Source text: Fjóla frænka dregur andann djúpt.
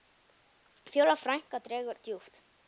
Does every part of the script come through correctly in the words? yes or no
no